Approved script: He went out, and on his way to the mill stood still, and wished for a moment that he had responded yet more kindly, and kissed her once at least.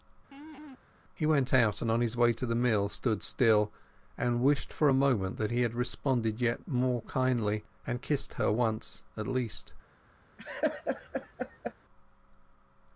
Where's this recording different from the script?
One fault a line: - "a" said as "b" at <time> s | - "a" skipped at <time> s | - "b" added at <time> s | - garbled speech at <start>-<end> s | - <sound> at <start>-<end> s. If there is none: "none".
- laugh at 0.3-0.8 s
- laugh at 10.4-11.7 s